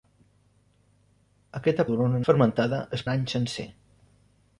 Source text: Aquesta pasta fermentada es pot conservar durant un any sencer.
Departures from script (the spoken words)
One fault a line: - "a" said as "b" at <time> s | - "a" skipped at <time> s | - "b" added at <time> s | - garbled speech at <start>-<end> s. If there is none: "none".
- "pasta" said as "durant" at 1.9 s
- "pot conservar durant" skipped at 3.1 s